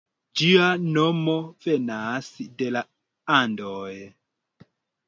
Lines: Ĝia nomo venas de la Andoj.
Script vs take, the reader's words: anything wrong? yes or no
no